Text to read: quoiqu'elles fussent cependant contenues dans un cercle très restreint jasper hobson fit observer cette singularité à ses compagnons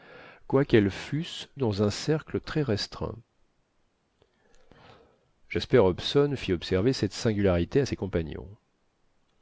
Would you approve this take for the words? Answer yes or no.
no